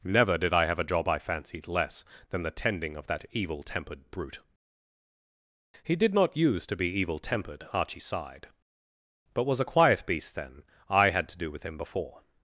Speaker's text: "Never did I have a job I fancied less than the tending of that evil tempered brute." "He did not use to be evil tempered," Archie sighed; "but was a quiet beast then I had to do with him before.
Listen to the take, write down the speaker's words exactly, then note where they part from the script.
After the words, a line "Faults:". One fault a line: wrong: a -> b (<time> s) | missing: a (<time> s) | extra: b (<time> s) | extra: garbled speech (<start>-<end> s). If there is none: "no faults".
"Never did I have a job I fancied less than the tending of that evil tempered brute." "He did not use to be evil tempered," Archie sighed; "but was a quiet beast then I had to do with him before.
Faults:
no faults